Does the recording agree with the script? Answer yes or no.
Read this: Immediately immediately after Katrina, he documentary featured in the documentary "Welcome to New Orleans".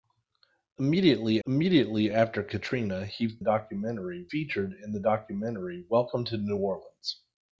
yes